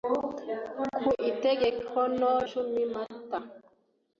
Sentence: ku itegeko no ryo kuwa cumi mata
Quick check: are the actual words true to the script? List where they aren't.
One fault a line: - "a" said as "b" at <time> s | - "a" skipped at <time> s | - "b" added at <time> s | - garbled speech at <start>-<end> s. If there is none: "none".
- "ryo kuwa" skipped at 2.3 s